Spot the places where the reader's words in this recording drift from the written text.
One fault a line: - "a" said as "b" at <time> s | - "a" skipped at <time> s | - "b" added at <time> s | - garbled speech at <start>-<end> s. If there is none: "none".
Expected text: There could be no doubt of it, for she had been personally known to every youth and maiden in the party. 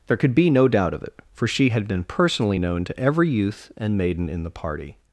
none